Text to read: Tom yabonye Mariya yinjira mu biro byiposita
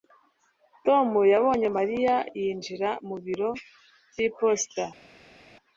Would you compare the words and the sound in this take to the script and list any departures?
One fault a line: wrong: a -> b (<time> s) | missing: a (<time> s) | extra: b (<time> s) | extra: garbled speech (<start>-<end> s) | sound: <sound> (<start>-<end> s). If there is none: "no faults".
no faults